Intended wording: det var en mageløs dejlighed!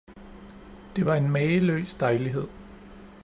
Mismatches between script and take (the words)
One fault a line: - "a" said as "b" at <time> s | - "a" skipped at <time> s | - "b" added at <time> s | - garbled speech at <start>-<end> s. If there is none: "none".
none